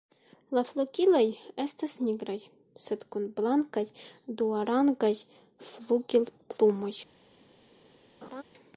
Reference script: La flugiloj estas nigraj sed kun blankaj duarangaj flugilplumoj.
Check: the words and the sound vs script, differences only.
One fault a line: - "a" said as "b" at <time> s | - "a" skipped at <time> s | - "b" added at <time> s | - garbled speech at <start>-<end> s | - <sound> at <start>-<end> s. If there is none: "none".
- laugh at 8.2-8.4 s